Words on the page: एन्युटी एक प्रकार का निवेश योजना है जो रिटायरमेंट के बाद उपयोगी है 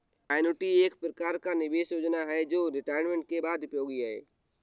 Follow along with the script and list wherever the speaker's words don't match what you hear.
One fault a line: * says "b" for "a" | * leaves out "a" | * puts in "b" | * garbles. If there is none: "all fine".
all fine